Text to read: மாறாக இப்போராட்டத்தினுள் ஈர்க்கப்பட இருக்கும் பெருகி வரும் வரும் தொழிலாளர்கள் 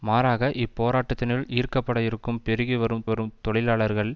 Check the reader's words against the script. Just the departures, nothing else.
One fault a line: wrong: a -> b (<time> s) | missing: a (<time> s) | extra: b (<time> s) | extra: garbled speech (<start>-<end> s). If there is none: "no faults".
no faults